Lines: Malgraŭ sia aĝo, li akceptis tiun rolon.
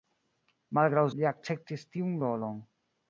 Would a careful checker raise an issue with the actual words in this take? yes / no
yes